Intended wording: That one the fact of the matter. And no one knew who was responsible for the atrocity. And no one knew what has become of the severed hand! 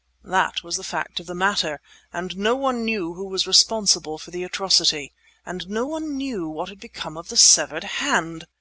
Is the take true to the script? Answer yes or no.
no